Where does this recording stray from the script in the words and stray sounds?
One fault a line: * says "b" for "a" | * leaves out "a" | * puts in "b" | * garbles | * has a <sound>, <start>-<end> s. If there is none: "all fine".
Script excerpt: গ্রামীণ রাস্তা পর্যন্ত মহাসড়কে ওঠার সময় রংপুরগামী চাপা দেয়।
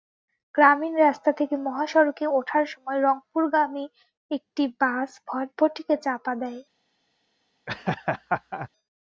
* says "থেকে" for "পর্যন্ত"
* puts in "একটি বাস ভটভটিকে"
* has a laugh, 7.7-8.7 s